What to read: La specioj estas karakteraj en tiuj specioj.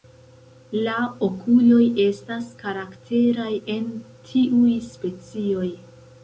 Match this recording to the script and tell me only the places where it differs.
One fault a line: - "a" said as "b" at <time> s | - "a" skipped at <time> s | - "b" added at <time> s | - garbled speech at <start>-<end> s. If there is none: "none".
- "specioj" said as "okuloj" at 1.3 s